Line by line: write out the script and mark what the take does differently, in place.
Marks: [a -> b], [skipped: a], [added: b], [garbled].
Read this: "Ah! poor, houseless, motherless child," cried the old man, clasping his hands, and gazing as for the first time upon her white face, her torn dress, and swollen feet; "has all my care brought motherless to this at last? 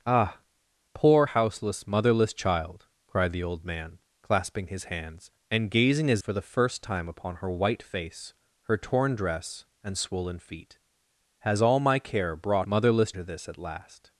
"Ah! poor, houseless, motherless child," cried the old man, clasping his hands, and gazing as for the first time upon her white face, her torn dress, and swollen feet; "has all my care brought motherless to this at last?